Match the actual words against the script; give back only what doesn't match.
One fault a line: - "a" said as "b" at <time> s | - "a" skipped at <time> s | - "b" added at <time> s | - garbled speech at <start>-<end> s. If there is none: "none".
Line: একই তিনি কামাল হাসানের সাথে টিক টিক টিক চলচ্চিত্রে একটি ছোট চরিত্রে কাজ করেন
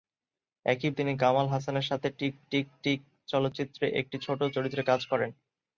none